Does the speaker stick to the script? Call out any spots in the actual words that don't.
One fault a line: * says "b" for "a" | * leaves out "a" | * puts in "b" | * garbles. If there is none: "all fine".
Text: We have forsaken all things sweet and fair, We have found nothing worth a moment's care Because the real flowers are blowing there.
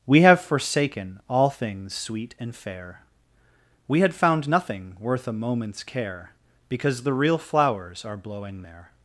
* says "had" for "have"